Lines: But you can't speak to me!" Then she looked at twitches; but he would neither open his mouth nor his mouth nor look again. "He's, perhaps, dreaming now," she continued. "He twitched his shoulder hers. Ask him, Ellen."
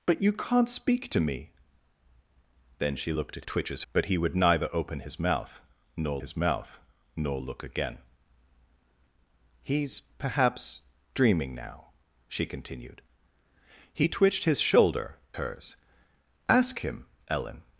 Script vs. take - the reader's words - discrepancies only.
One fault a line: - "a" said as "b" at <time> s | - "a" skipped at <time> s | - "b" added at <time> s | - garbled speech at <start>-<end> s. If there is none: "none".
none